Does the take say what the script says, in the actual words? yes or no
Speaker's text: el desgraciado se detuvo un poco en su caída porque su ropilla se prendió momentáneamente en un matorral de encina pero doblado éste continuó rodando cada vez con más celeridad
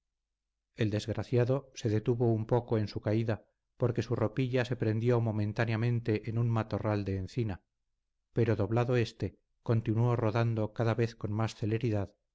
yes